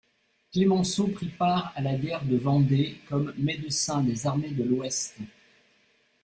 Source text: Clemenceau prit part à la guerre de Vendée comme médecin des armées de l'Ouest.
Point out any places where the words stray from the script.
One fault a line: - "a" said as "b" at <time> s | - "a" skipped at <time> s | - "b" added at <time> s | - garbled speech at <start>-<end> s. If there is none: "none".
none